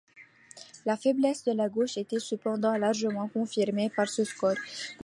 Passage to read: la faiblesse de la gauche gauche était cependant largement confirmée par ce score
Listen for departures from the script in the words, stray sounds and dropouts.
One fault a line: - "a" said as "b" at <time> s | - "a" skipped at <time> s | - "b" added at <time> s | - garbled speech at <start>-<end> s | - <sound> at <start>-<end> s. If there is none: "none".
- "gauche" skipped at 1.9 s